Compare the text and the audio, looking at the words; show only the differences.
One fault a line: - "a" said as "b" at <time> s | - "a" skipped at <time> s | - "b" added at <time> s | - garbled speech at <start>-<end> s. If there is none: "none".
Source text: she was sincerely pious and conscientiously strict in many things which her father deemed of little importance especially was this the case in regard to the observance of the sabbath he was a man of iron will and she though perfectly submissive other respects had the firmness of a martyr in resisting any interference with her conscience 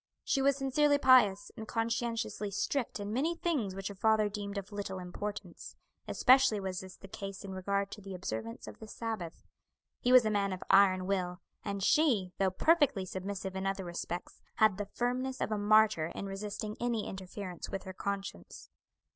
- "in" added at 13.6 s